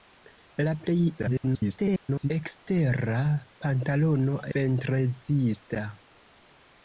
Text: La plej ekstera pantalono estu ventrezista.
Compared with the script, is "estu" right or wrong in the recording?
wrong